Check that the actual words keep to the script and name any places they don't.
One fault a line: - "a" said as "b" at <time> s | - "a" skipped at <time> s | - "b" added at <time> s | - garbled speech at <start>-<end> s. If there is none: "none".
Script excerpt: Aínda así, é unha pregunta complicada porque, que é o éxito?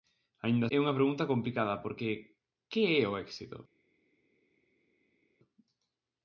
- "así" skipped at 0.7 s